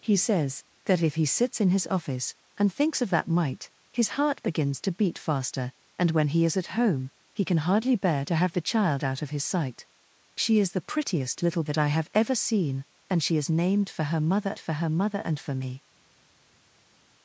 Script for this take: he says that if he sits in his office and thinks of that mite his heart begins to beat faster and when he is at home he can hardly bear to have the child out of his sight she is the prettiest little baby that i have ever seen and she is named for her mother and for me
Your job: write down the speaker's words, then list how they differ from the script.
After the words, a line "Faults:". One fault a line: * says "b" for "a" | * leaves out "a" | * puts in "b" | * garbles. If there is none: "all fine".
he says that if he sits in his office and thinks of that mite his heart begins to beat faster and when he is at home he can hardly bear to have the child out of his sight she is the prettiest little that i have ever seen and she is named for her mother for her mother and for me
Faults:
* leaves out "baby"
* puts in "for her mother"